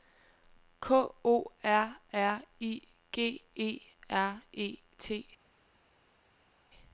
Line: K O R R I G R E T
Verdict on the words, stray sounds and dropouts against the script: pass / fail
fail